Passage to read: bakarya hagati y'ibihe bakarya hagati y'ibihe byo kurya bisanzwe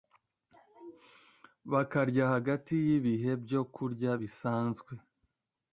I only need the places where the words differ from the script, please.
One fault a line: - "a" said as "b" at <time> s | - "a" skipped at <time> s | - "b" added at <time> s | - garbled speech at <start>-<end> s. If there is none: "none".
- "bakarya hagati y'ibihe" skipped at 3.3 s